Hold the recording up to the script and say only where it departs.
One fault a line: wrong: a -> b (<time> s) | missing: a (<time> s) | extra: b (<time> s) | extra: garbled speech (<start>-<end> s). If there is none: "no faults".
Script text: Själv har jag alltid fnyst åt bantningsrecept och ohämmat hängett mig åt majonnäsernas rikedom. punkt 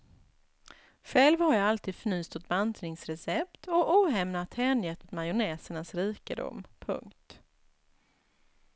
missing: mig (5.0 s)